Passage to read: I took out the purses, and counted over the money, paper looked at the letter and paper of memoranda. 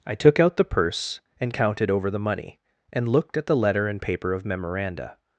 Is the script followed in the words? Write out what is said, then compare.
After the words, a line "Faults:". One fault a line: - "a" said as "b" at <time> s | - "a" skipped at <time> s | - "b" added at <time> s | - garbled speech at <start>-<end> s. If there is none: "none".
I took out the purse, and counted over the money, and looked at the letter and paper of memoranda.
Faults:
- "purses" said as "purse" at 0.6 s
- "paper" said as "and" at 2.9 s